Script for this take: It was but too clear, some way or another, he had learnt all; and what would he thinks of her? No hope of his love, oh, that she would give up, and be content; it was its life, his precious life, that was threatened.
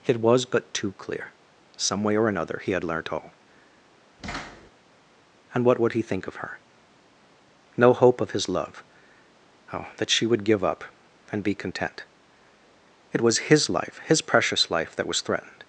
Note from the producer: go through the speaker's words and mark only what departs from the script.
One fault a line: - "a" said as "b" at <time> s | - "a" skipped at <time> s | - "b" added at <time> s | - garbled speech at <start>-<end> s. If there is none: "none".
- "thinks" said as "think" at 6.0 s
- "its" said as "his" at 13.5 s